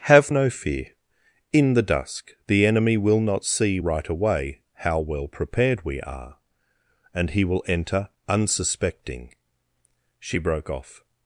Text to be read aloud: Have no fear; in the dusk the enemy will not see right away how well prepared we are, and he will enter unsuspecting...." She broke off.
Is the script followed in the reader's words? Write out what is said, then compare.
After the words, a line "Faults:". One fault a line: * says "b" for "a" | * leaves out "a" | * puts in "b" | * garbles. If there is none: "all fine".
Have no fear; in the dusk the enemy will not see right away how well prepared we are, and he will enter unsuspecting...." She broke off.
Faults:
all fine